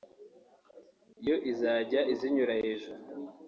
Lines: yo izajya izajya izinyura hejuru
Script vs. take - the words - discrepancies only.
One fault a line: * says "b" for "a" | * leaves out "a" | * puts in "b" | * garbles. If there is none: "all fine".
* leaves out "izajya"